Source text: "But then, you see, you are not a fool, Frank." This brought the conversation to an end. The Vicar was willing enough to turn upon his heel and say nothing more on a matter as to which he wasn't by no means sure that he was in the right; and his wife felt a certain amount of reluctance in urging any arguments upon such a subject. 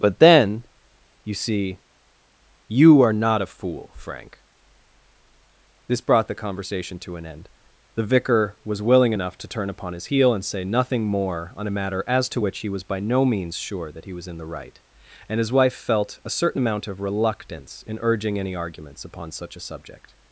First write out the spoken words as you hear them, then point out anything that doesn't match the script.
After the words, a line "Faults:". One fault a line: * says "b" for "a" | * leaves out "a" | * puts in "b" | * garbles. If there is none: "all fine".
"But then, you see, you are not a fool, Frank." This brought the conversation to an end. The Vicar was willing enough to turn upon his heel and say nothing more on a matter as to which he was by no means sure that he was in the right; and his wife felt a certain amount of reluctance in urging any arguments upon such a subject.
Faults:
* says "was" for "wasn't"